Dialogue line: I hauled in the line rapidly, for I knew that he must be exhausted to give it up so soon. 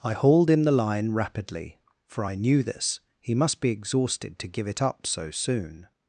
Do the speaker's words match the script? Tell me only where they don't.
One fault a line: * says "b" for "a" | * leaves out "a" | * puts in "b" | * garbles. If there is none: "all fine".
* says "this" for "that"